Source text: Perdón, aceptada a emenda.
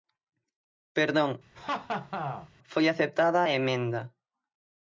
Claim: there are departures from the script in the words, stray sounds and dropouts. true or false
true